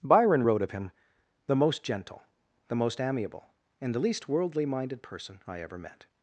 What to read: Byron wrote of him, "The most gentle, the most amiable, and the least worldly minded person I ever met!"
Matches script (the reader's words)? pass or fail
pass